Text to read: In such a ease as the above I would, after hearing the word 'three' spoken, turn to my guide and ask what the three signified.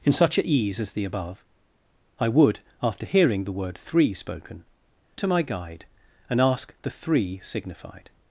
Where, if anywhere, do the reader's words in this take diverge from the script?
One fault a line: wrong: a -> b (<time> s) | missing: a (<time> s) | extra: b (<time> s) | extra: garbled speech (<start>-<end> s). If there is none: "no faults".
missing: turn (4.6 s)
missing: what (6.7 s)